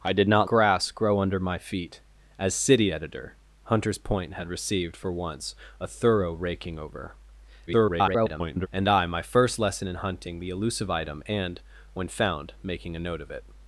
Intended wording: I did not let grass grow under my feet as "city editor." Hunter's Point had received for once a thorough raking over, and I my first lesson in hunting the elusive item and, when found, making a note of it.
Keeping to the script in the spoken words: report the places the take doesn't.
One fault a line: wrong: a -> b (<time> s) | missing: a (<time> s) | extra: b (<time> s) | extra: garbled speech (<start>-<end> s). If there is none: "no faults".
missing: let (0.5 s)
extra: garbled speech (7.7-8.7 s)